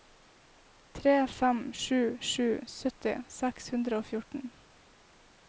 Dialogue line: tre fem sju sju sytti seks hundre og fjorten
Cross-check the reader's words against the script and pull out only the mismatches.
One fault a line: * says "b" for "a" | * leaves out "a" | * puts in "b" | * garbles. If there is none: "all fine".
all fine